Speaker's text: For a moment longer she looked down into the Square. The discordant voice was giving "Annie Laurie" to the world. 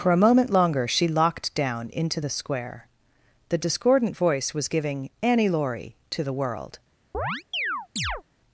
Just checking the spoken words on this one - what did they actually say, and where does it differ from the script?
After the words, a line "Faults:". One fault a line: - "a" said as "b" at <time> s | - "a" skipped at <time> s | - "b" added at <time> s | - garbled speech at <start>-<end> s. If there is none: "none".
For a moment longer she locked down into the Square. The discordant voice was giving "Annie Laurie" to the world.
Faults:
- "looked" said as "locked" at 1.1 s